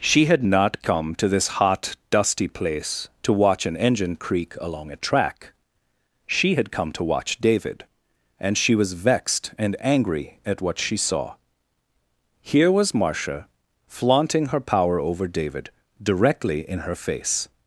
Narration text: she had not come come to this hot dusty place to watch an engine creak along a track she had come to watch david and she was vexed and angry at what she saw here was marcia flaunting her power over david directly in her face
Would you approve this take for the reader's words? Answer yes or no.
no